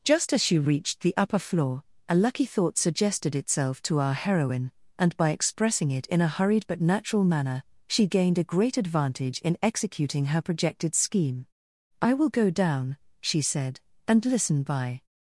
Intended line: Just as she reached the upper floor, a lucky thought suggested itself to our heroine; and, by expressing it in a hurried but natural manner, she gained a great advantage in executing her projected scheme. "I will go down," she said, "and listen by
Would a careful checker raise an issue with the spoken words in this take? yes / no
no